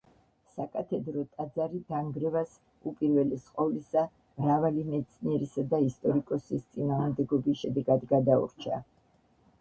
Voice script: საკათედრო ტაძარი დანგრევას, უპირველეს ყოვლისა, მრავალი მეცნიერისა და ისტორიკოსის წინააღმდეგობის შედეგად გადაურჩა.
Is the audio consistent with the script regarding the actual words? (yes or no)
yes